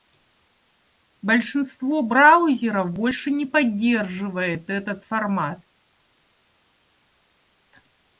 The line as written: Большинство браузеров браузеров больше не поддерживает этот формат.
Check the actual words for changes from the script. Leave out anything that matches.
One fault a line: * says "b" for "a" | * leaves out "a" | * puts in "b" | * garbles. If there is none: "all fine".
* leaves out "браузеров"